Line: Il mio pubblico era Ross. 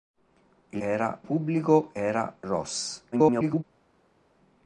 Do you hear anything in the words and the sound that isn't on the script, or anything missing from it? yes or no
yes